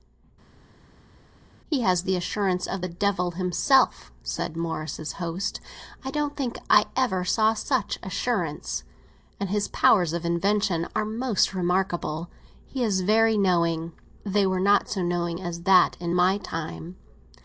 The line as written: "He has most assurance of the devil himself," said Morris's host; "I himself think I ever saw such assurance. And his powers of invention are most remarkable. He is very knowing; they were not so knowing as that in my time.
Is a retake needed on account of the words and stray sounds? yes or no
yes